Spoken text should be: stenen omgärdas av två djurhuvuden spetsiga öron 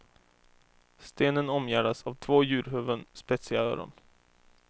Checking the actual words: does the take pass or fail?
pass